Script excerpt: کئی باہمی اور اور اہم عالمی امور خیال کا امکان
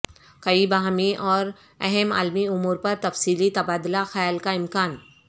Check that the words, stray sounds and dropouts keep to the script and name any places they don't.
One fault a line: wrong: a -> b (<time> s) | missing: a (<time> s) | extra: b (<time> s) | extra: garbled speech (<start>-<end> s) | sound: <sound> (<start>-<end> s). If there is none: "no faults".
missing: اور (1.4 s)
extra: پر تفصیلی تبادلہ (2.8 s)